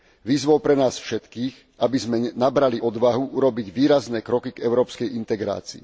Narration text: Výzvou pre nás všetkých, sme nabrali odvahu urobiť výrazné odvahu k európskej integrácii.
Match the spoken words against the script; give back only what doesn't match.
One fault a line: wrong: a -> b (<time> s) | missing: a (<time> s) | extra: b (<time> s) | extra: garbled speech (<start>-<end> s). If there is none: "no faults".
extra: aby (1.8 s)
wrong: odvahu -> kroky (4.2 s)